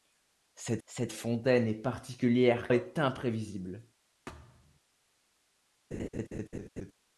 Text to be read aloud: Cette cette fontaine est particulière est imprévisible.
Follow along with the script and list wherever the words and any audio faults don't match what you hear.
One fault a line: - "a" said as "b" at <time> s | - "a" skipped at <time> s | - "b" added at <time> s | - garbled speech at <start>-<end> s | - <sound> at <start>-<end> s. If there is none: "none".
- thud at 4.3-4.8 s
- laugh at 5.9-6.9 s